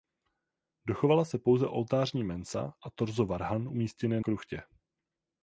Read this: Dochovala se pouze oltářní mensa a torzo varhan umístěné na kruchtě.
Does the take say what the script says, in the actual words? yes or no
no